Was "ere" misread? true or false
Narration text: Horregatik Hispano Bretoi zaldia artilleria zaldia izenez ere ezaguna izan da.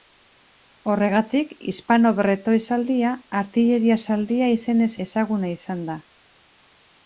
true